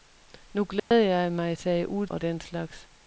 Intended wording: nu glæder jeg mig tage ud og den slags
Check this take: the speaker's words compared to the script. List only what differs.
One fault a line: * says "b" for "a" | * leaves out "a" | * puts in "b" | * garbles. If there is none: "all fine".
all fine